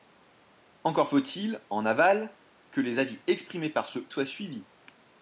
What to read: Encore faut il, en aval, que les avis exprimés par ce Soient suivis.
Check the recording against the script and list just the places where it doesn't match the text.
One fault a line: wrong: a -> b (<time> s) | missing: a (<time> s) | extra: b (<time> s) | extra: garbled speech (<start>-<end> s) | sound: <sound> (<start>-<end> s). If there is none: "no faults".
no faults